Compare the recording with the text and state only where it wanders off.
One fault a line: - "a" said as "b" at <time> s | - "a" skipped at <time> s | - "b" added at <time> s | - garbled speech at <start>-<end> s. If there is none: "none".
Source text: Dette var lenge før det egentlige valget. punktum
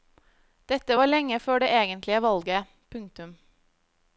none